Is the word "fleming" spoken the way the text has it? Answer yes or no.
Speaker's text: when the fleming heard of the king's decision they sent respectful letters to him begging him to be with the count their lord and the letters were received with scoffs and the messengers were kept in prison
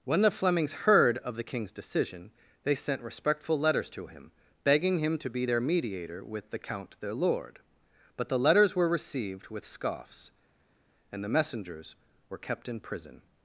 no